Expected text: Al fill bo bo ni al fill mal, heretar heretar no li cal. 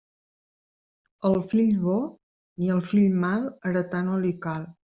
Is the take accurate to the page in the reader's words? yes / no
no